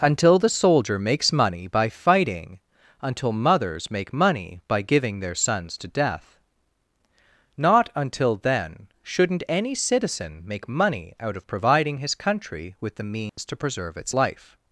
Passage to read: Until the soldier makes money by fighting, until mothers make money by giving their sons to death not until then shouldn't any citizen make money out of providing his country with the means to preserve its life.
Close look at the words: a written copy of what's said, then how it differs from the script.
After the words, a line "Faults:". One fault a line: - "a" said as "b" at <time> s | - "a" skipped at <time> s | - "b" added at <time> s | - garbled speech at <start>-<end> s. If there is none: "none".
Until the soldier makes money by fighting, until mothers make money by giving their sons to death not until then shouldn't any citizen make money out of providing his country with the means to preserve its life.
Faults:
none